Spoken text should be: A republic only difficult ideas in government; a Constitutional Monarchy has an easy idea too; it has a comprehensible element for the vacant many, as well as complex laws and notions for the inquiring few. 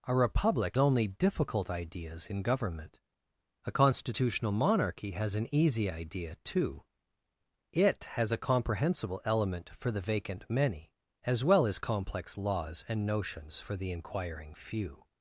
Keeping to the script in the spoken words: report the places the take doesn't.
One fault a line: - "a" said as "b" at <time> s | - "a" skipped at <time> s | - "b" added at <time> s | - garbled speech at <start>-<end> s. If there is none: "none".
none